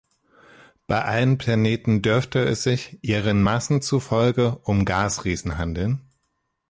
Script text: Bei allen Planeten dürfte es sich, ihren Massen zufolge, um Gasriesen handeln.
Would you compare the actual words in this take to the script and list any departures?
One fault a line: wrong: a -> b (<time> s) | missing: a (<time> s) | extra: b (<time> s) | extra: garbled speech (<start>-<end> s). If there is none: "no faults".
no faults